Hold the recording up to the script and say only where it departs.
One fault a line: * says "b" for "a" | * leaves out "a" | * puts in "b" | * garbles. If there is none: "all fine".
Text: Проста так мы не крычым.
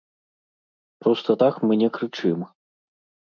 all fine